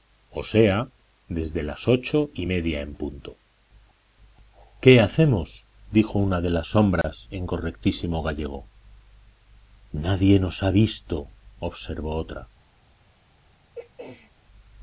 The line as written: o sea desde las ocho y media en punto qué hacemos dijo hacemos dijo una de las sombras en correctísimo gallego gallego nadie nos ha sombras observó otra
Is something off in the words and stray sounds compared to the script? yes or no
yes